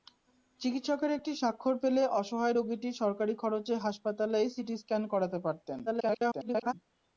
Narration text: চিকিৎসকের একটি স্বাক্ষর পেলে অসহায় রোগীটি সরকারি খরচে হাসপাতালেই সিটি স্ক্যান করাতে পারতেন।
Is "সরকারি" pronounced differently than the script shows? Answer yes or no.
no